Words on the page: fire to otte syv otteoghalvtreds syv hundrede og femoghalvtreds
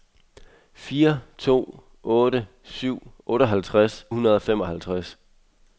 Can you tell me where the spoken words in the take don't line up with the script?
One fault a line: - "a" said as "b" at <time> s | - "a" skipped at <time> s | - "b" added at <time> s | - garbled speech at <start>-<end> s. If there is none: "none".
- "syv" skipped at 4.0 s